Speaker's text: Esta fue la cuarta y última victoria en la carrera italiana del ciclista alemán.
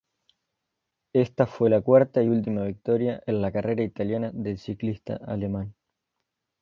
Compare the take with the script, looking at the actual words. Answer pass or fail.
pass